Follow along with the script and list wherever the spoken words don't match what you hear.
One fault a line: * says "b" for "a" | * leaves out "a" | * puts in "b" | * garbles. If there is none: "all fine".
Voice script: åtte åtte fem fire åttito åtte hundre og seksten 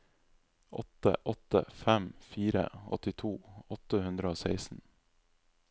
all fine